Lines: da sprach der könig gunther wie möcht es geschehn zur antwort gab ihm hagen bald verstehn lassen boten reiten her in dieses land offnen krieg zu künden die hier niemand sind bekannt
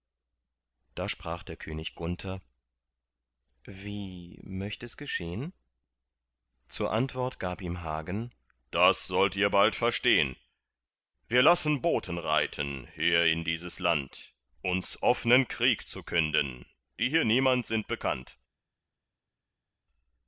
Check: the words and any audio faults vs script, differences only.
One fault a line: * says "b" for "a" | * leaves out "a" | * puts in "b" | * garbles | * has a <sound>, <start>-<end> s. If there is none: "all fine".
* puts in "das sollt ihr"
* puts in "wir"
* puts in "uns"